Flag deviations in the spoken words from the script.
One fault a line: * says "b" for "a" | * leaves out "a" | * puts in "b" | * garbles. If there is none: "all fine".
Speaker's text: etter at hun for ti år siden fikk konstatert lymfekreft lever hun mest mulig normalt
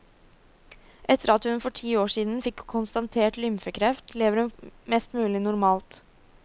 all fine